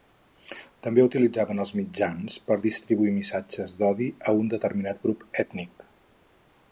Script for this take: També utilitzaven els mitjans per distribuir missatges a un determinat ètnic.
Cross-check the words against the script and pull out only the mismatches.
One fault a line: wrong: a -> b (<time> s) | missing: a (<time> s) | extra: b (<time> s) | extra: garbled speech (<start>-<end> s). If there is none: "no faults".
extra: d'odi (3.8 s)
extra: grup (5.1 s)